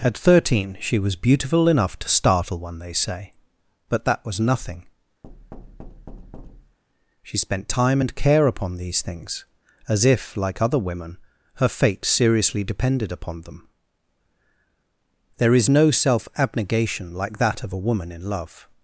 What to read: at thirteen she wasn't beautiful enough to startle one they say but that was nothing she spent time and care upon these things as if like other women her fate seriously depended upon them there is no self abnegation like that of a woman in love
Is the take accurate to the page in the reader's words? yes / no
no